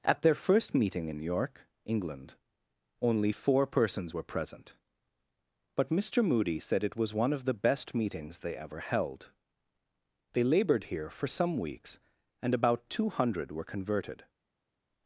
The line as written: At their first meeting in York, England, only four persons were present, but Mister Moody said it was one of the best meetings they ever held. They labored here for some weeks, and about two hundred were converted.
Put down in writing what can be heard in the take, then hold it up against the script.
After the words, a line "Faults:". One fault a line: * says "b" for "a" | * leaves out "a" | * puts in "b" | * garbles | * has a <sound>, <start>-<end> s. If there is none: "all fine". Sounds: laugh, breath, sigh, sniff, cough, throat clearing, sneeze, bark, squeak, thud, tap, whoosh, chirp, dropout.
At their first meeting in York, England, only four persons were present, but Mister Moody said it was one of the best meetings they ever held. They labored here for some weeks, and about two hundred were converted.
Faults:
all fine